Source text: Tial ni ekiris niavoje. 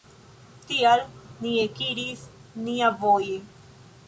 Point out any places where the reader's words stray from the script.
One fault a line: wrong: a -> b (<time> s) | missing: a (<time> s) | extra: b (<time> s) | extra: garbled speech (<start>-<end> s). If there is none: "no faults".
no faults